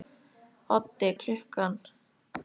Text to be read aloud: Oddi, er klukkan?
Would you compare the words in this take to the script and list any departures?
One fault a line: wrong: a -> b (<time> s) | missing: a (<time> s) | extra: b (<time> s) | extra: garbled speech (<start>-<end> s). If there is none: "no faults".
no faults